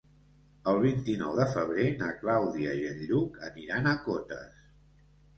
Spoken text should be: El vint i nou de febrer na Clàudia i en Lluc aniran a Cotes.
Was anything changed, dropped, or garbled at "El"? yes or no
no